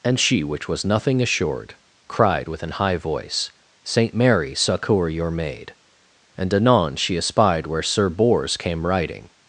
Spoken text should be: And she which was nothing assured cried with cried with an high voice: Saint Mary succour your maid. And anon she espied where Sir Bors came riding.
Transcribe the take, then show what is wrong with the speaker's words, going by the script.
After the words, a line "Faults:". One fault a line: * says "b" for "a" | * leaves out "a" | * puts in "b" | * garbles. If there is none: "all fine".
And she which was nothing assured cried with an high voice: Saint Mary succour your maid. And anon she espied where Sir Bors came riding.
Faults:
* leaves out "cried with"